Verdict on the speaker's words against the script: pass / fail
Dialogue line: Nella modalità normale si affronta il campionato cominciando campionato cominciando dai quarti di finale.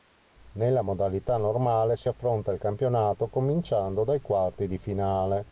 fail